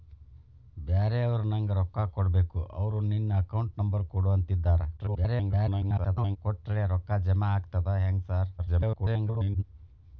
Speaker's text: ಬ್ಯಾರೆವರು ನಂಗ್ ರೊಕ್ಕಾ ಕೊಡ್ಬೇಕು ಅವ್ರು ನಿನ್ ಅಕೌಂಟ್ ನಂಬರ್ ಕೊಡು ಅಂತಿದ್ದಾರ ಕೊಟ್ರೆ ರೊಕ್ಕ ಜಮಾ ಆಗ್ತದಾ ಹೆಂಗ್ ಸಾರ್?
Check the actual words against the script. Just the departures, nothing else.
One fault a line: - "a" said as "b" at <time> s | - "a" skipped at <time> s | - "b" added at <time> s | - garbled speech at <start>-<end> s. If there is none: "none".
- garbled speech at 5.0-6.4 s
- garbled speech at 8.6-9.6 s